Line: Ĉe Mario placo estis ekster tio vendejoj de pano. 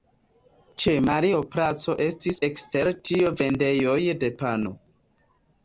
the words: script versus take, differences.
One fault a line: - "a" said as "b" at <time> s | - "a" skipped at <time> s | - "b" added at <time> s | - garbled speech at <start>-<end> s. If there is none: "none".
none